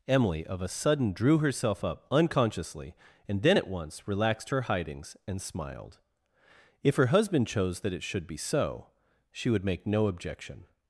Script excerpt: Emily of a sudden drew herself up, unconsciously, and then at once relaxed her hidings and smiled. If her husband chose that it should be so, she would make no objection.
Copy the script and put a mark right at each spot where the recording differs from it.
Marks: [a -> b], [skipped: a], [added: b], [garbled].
Emily of a sudden drew herself up, unconsciously, and then at once relaxed her hidings and smiled. If her husband chose that it should be so, she would make no objection.